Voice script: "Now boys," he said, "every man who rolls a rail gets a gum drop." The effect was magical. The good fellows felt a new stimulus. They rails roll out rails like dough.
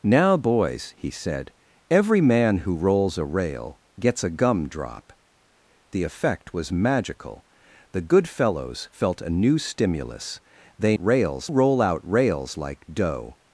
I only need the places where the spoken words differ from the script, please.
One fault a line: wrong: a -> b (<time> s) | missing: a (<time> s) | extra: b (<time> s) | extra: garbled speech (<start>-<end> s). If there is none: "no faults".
no faults